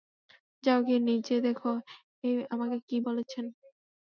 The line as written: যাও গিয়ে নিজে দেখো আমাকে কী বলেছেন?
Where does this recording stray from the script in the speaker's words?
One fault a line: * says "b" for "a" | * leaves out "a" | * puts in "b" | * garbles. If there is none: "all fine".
all fine